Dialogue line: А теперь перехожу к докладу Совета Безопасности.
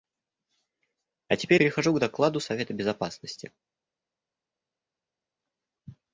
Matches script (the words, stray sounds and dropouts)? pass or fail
pass